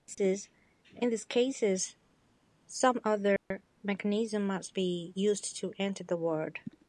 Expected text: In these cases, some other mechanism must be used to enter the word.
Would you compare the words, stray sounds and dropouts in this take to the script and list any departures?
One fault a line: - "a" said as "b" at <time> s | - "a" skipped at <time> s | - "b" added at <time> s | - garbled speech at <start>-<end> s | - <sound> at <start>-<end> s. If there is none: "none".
- dropout at 3.4-3.5 s